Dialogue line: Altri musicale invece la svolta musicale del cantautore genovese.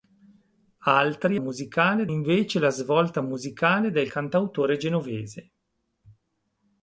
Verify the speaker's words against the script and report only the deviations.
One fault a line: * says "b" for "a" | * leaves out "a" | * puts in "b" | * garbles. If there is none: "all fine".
all fine